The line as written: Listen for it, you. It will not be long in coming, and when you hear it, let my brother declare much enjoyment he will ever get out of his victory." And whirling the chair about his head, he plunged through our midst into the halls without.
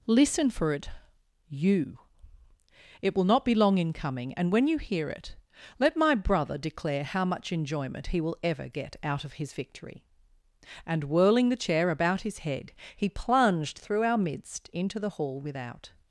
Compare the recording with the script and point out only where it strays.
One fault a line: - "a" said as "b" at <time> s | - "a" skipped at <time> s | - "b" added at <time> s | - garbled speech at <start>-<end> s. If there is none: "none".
- "how" added at 7.0 s
- "halls" said as "hall" at 15.2 s